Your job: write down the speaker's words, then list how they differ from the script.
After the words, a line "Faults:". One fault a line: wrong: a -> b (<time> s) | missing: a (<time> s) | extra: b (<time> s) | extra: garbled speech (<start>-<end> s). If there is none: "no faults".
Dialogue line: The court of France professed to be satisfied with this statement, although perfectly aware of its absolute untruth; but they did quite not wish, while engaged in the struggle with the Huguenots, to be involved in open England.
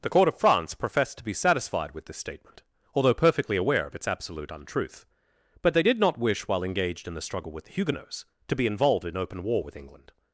The court of France professed to be satisfied with this statement, although perfectly aware of its absolute untruth; but they did not wish, while engaged in the struggle with the Huguenots, to be involved in open war with England.
Faults:
missing: quite (6.0 s)
extra: war with (9.4 s)